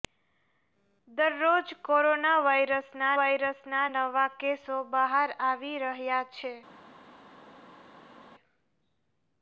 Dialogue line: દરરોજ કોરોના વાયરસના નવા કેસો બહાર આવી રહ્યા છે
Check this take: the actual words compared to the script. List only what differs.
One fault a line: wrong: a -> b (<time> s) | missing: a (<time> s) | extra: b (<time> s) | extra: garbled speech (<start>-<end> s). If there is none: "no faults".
extra: વાયરસના (3.2 s)